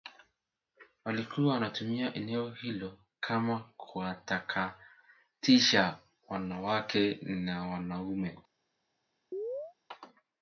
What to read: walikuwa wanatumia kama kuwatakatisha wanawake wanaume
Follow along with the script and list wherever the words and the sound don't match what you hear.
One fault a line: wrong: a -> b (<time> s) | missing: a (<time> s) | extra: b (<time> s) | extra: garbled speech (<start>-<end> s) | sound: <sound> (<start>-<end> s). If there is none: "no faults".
extra: eneo hilo (2.1 s)
extra: na (7.2 s)
sound: chirp (9.3-9.7 s)